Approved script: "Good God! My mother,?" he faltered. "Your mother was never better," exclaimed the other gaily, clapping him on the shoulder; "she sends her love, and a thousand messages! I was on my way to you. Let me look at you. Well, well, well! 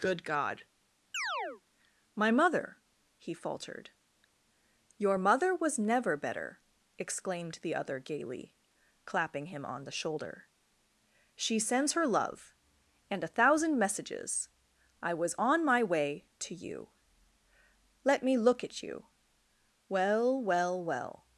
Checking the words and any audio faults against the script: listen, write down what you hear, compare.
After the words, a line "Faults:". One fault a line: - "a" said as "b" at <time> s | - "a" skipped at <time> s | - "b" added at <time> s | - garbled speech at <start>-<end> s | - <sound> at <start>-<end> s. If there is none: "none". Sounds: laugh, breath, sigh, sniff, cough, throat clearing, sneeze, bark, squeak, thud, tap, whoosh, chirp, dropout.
"Good God! My mother,?" he faltered. "Your mother was never better," exclaimed the other gaily, clapping him on the shoulder; "she sends her love, and a thousand messages! I was on my way to you. Let me look at you. Well, well, well!
Faults:
- chirp at 1.1-1.6 s